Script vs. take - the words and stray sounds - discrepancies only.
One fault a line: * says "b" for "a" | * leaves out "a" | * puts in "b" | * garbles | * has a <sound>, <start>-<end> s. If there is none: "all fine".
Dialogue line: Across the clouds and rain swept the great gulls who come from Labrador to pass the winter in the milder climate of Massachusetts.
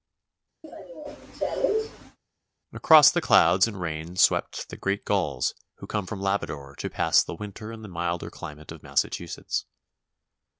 * has a cough, 0.6-2.2 s